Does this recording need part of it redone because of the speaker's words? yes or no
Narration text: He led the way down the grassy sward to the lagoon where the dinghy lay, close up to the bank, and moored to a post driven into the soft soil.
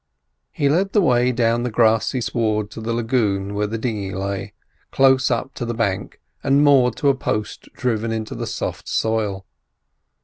no